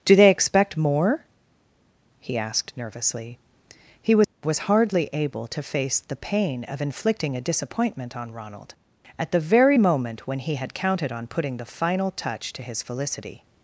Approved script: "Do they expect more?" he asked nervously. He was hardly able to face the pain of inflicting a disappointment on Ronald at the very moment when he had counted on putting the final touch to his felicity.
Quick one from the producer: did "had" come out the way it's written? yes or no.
yes